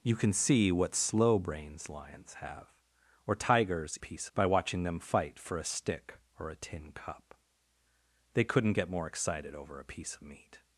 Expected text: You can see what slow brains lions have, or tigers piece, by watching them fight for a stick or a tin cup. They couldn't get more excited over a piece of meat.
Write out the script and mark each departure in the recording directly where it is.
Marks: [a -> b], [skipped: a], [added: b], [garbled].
You can see what slow brains lions have, or tigers piece, by watching them fight for a stick or a tin cup. They couldn't get more excited over a piece of meat.